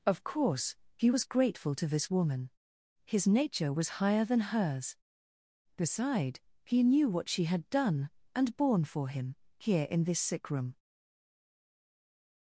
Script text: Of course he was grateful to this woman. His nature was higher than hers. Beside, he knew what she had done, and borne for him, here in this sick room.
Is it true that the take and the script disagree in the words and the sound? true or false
false